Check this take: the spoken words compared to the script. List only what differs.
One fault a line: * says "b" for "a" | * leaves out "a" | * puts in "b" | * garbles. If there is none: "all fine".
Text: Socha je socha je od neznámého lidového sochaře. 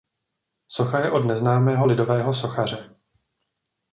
* leaves out "socha je"